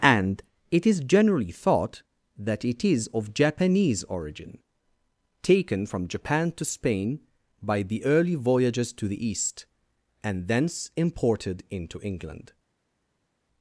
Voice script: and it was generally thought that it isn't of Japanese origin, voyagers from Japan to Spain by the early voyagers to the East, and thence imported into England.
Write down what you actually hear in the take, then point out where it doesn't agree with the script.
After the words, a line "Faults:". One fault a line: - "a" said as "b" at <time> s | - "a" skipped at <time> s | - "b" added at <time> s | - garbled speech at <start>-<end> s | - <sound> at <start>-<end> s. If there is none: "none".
and it is generally thought that it is of Japanese origin, taken from Japan to Spain by the early voyagers to the East, and thence imported into England.
Faults:
- "was" said as "is" at 0.8 s
- "isn't" said as "is" at 2.8 s
- "voyagers" said as "taken" at 5.4 s